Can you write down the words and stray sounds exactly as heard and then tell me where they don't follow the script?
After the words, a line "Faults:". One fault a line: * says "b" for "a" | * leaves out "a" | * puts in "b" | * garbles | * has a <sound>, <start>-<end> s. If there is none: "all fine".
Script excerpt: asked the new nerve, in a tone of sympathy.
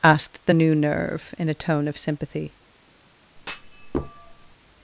asked the new nerve, in a tone of sympathy.
Faults:
* has a thud, 3.4-4.6 s